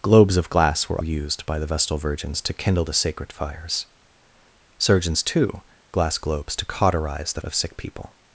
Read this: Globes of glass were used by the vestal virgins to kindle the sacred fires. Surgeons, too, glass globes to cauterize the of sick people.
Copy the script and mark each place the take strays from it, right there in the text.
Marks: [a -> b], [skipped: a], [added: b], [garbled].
Globes of glass were used by the vestal virgins to kindle the sacred fires. Surgeons, too, glass globes to cauterize the of sick people.